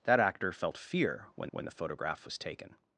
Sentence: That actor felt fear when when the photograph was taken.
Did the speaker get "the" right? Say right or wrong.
right